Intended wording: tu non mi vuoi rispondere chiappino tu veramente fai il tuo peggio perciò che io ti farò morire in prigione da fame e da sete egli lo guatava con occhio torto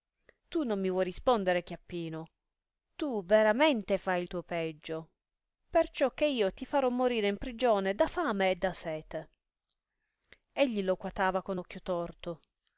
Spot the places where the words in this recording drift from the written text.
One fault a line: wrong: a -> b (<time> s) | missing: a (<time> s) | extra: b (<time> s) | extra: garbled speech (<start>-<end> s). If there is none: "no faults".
no faults